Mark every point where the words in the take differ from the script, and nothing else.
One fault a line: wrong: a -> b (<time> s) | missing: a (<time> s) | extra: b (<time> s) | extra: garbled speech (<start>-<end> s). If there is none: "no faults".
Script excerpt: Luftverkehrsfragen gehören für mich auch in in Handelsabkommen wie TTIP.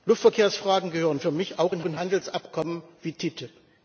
no faults